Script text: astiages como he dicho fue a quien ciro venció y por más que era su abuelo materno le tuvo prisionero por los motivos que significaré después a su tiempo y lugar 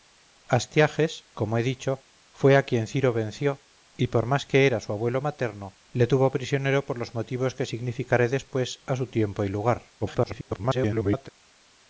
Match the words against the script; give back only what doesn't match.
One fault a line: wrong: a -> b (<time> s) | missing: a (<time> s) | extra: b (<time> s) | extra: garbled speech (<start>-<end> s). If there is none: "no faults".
extra: garbled speech (10.0-11.3 s)